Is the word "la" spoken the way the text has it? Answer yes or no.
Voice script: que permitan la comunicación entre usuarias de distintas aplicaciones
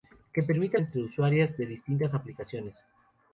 no